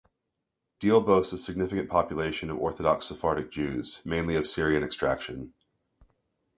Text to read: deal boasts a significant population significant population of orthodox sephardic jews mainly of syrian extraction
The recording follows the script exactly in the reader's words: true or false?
false